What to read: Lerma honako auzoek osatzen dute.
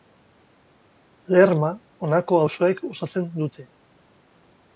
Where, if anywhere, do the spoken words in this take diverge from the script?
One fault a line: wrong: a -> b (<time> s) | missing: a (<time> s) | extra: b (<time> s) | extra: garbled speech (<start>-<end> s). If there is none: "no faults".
no faults